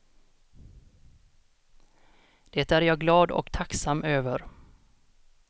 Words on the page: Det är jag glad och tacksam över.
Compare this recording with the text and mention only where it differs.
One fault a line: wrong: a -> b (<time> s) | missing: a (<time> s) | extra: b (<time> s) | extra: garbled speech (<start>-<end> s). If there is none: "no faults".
no faults